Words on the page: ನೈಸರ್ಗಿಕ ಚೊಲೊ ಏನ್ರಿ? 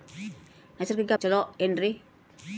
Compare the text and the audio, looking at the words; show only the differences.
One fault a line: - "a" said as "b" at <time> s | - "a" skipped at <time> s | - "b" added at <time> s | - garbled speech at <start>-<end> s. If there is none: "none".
none